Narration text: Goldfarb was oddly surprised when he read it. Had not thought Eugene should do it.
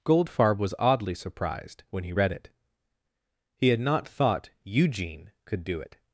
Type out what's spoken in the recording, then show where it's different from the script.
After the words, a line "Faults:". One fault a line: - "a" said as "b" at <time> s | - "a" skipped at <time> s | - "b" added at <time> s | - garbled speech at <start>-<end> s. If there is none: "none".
Goldfarb was oddly surprised when he read it. He had not thought Eugene could do it.
Faults:
- "He" added at 3.5 s
- "should" said as "could" at 5.5 s